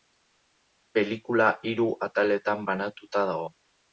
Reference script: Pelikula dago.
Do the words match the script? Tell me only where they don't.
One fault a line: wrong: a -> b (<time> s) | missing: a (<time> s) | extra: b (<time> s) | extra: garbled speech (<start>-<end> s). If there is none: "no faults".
extra: hiru ataletan banatuta (1.7 s)